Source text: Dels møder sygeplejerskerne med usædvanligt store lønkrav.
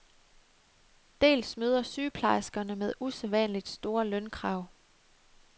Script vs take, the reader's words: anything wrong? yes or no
no